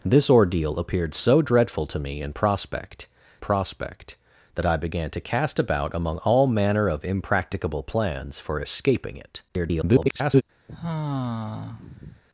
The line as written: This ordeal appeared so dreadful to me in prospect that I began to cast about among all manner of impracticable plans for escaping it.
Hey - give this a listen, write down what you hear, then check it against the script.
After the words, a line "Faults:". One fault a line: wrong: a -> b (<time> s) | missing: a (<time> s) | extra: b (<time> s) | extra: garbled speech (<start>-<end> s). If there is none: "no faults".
This ordeal appeared so dreadful to me in prospect prospect that I began to cast about among all manner of impracticable plans for escaping it. [garbled]
Faults:
extra: prospect (3.4 s)
extra: garbled speech (9.5-10.4 s)